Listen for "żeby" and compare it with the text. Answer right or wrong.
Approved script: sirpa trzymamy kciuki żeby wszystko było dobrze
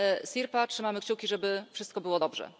right